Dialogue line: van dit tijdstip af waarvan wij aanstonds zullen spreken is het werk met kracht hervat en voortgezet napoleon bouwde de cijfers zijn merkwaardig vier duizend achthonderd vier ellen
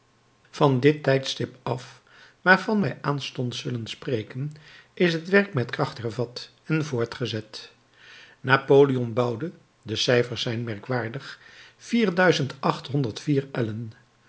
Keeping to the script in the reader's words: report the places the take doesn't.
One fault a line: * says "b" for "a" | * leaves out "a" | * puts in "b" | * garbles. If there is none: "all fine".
all fine